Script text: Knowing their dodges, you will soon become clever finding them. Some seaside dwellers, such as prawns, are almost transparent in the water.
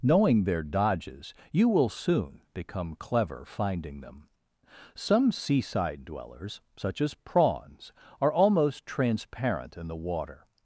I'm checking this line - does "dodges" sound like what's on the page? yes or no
yes